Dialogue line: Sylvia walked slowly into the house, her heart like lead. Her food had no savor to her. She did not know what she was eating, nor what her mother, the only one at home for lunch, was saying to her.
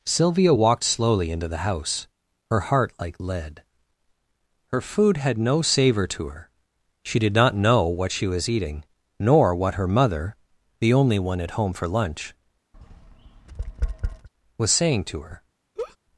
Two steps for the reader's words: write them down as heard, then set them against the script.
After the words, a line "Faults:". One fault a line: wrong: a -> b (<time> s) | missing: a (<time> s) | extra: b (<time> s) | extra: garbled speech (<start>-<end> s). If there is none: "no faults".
Sylvia walked slowly into the house, her heart like lead. Her food had no savor to her. She did not know what she was eating, nor what her mother, the only one at home for lunch, was saying to her.
Faults:
no faults